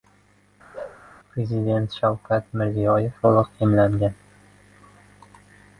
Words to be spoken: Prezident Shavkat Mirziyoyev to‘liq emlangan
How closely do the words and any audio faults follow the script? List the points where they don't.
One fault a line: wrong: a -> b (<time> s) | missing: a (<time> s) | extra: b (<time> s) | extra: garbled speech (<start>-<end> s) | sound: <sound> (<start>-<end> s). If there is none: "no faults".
sound: bark (0.7-1.0 s)